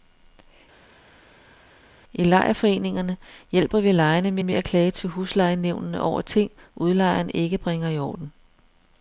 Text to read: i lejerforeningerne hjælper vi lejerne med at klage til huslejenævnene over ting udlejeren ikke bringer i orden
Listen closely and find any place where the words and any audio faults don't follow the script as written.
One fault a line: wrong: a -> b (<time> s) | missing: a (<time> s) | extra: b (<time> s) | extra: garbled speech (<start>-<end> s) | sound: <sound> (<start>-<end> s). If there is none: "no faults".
extra: med (4.4 s)